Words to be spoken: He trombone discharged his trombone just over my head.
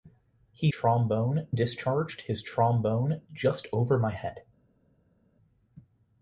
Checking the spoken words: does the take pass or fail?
pass